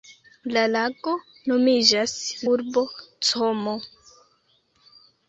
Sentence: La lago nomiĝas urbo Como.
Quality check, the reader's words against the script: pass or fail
pass